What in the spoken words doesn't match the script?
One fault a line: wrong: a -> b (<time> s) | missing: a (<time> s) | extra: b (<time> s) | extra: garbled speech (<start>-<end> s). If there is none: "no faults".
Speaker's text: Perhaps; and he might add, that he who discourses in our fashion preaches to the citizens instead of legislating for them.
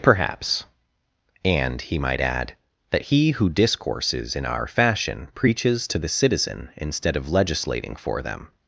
wrong: citizens -> citizen (6.1 s)